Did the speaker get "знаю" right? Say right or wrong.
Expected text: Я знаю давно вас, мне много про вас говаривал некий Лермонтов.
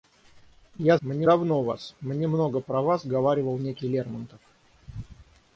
wrong